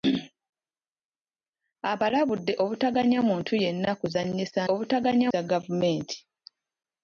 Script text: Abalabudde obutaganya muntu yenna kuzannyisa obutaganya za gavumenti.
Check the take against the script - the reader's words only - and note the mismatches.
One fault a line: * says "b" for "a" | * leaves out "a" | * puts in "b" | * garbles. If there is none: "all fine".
all fine